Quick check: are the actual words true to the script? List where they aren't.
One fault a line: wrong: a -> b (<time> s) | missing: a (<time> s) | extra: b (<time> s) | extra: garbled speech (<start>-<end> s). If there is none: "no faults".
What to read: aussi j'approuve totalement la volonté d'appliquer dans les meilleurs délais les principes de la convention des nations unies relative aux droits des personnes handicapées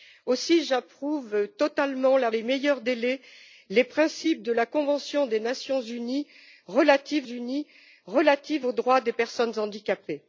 missing: volonté d'appliquer dans (2.3 s)
extra: unies relative (7.2 s)